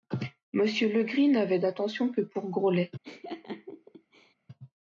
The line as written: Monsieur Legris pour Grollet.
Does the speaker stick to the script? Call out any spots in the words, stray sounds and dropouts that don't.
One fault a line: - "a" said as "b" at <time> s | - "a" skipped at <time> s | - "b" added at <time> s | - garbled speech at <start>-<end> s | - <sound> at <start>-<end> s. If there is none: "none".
- "n'avait d'attention que" added at 1.3 s
- laugh at 3.0-4.3 s